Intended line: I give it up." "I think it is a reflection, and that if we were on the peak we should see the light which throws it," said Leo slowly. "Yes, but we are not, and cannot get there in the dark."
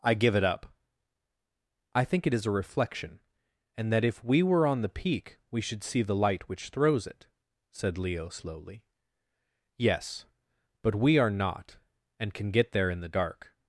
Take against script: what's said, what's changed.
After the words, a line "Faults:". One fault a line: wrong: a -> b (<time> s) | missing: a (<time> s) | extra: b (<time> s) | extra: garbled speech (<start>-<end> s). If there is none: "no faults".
I give it up." "I think it is a reflection, and that if we were on the peak we should see the light which throws it," said Leo slowly. "Yes, but we are not, and can get there in the dark."
Faults:
wrong: cannot -> can (12.3 s)